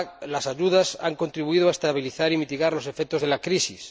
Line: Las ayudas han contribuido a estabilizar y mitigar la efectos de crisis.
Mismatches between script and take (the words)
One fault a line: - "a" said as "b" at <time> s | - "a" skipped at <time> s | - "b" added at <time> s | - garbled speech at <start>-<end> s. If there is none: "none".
- "la" said as "los" at 2.7 s
- "la" added at 3.3 s